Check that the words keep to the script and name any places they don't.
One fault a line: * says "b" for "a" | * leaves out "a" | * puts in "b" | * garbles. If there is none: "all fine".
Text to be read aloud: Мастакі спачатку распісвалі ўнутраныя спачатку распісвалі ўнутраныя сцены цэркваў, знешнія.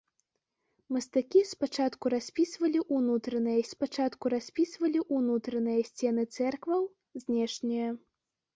all fine